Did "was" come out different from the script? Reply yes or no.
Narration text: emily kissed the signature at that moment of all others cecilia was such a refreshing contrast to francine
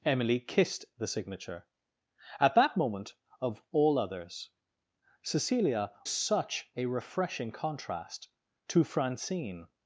yes